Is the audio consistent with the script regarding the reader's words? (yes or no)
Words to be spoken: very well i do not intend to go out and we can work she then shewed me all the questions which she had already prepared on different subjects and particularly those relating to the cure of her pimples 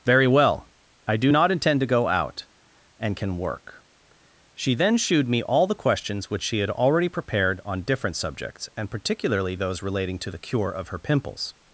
no